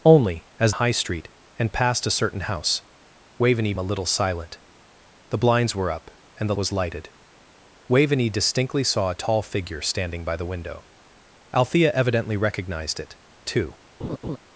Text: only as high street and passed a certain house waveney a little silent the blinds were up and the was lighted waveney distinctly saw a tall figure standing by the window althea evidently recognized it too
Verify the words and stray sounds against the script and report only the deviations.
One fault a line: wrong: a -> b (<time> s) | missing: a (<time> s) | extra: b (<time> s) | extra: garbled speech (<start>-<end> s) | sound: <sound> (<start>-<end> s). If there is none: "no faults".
sound: laugh (14.0-14.4 s)